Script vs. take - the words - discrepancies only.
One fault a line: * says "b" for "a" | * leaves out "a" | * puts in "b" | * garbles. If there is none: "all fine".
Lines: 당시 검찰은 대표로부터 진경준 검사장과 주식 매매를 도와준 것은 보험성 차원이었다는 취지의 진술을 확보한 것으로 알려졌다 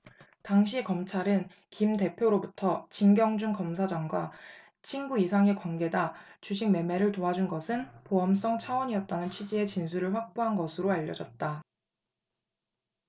* puts in "김"
* puts in "친구 이상의 관계다"